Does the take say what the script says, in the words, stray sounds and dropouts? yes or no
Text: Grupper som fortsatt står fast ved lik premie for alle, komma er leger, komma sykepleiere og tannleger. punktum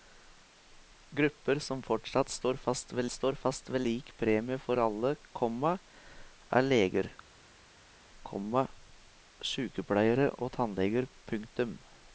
no